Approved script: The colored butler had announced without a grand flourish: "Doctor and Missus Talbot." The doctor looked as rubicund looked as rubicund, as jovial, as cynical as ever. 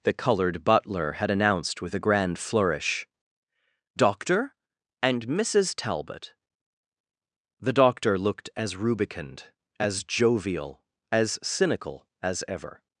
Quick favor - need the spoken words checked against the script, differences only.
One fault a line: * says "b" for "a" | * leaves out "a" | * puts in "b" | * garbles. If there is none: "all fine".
* says "with" for "without"
* leaves out "looked as rubicund"